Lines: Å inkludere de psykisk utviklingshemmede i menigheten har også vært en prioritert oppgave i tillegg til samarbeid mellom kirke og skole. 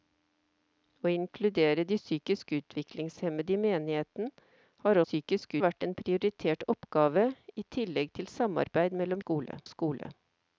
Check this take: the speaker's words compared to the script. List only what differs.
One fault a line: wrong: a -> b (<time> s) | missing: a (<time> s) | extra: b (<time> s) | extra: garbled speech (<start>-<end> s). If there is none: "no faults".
wrong: også -> psykisk (5.0 s)
wrong: kirke -> skole (9.2 s)